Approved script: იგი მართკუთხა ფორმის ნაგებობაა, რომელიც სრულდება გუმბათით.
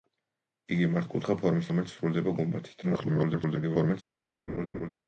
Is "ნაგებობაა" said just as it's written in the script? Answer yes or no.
no